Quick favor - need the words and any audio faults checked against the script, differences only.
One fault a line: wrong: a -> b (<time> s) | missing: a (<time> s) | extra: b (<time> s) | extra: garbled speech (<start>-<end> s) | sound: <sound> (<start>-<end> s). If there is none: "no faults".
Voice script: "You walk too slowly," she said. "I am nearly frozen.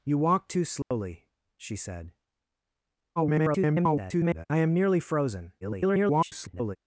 sound: dropout (0.8-0.9 s)
extra: garbled speech (3.2-4.5 s)
extra: garbled speech (5.6-6.8 s)